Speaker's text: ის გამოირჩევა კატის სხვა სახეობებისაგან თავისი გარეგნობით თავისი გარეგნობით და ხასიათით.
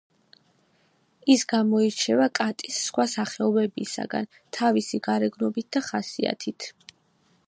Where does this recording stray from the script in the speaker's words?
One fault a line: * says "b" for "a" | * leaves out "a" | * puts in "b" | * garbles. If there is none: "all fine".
* leaves out "თავისი გარეგნობით"